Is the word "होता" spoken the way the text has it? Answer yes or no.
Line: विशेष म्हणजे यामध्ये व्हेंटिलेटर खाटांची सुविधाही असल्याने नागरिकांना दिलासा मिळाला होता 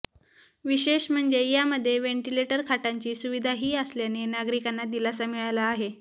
no